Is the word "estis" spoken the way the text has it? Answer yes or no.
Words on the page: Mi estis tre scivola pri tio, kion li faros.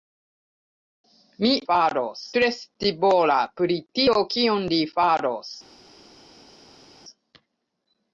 no